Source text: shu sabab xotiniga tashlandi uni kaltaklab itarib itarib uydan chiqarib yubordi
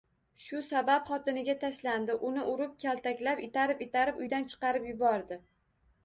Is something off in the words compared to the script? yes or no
yes